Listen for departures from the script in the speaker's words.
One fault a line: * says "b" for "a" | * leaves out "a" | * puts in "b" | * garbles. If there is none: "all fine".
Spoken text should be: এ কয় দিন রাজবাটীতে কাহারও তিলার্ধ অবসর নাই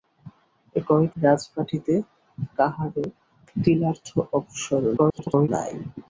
* leaves out "দিন"
* garbles